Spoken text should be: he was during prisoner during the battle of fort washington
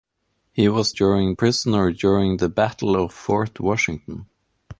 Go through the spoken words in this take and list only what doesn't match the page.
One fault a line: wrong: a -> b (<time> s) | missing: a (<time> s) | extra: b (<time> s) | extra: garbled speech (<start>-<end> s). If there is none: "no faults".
no faults